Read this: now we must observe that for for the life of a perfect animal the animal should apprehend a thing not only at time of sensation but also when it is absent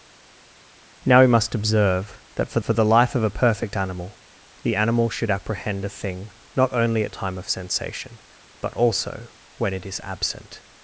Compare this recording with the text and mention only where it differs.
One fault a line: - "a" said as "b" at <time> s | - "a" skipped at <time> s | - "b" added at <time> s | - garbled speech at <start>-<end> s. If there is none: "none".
none